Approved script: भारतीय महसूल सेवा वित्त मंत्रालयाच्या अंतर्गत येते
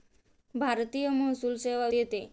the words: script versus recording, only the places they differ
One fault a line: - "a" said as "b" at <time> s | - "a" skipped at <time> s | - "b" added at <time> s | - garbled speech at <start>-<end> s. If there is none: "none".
- "वित्त मंत्रालयाच्या अंतर्गत" skipped at 1.9 s